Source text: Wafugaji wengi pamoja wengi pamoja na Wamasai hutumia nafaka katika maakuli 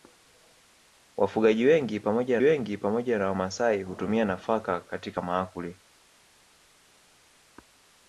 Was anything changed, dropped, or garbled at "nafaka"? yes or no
no